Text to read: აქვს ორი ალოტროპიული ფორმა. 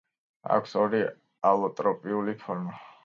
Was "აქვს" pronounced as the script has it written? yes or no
yes